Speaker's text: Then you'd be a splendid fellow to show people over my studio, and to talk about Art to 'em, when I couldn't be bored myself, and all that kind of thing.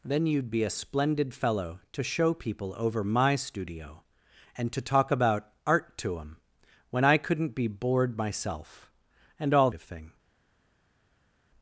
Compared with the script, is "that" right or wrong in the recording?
wrong